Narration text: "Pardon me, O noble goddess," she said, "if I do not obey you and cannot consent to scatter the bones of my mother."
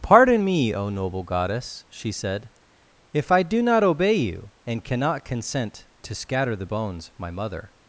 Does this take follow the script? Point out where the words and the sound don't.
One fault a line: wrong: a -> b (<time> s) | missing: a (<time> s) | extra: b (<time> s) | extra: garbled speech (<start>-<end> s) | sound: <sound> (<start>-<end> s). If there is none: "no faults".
no faults